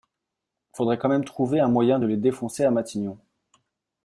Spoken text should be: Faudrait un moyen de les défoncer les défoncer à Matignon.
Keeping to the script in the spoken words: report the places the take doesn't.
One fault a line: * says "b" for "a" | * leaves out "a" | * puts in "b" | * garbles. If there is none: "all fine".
* puts in "quand même trouver"
* leaves out "les défoncer"